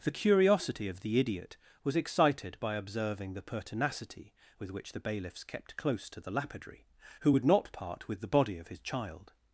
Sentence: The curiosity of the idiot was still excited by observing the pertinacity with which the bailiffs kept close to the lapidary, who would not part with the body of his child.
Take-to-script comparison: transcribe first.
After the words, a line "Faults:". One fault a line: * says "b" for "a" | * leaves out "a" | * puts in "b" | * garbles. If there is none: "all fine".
The curiosity of the idiot was excited by observing the pertinacity with which the bailiffs kept close to the lapidary, who would not part with the body of his child.
Faults:
* leaves out "still"